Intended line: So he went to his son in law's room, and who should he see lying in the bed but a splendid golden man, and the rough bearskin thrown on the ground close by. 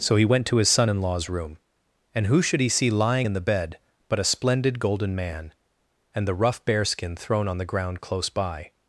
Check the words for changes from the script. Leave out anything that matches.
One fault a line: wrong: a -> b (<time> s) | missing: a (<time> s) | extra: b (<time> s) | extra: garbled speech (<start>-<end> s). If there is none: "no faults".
no faults